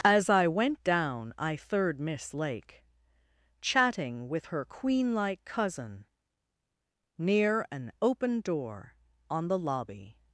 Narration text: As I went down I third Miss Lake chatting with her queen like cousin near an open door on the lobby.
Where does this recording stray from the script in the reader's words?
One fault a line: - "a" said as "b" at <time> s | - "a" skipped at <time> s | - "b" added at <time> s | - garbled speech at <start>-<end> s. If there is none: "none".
none